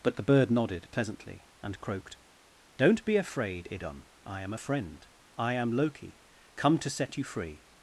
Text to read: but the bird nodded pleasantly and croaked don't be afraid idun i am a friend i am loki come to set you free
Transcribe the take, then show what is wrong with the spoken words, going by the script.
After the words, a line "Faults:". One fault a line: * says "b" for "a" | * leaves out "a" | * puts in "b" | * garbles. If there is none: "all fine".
but the bird nodded pleasantly and croaked don't be afraid idun i am a friend i am loki come to set you free
Faults:
all fine